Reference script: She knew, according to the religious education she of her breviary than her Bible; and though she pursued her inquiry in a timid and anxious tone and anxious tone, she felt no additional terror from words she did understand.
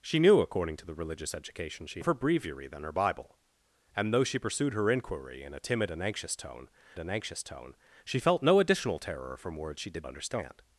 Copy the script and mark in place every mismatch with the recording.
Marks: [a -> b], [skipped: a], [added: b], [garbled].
She knew, according to the religious education she of her breviary than her Bible; and though she pursued her inquiry in a timid and anxious tone and anxious tone, she felt no additional terror from words she did understand.